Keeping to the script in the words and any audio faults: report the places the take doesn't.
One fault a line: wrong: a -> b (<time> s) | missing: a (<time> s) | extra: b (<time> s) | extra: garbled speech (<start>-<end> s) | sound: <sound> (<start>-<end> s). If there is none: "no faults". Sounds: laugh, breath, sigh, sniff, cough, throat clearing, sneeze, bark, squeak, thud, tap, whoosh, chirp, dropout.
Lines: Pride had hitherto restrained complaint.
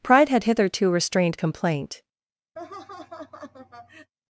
sound: laugh (2.6-4.1 s)